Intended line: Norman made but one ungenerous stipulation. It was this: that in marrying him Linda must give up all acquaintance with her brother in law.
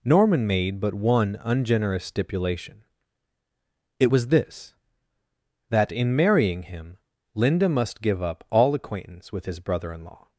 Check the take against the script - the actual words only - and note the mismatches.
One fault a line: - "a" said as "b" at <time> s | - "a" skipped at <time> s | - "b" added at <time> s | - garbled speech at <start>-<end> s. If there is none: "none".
- "her" said as "his" at 9.4 s